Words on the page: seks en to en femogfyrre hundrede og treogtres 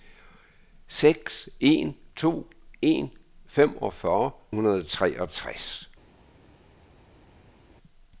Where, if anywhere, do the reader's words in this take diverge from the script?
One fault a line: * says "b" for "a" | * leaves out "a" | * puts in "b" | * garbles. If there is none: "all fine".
all fine